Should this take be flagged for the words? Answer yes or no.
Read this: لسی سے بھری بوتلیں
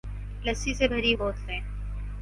no